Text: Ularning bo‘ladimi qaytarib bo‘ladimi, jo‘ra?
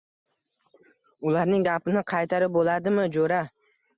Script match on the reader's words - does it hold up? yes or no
no